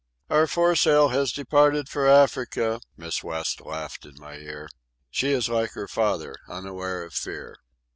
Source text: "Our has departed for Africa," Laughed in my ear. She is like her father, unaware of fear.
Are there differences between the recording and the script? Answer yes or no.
yes